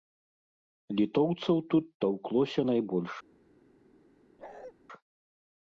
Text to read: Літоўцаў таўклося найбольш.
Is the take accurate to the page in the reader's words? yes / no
no